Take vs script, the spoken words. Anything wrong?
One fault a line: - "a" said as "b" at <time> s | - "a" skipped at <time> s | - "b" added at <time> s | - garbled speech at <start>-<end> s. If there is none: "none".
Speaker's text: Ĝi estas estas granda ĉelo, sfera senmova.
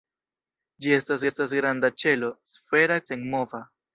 none